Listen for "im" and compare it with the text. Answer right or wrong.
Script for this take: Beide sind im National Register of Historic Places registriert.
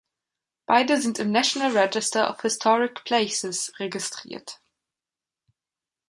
right